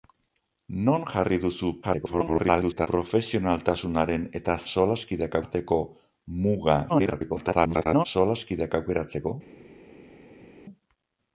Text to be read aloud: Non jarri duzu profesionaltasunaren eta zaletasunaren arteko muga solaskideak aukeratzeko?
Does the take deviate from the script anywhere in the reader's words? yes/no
yes